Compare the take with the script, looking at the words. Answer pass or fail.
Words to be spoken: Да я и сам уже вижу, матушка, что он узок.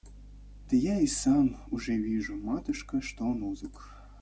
pass